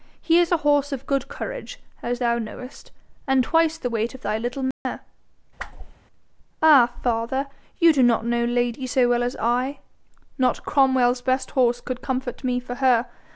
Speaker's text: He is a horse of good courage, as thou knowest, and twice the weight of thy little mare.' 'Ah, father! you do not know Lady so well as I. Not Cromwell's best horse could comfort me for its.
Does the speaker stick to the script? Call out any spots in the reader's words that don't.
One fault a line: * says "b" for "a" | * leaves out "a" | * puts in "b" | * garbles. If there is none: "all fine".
* says "her" for "its"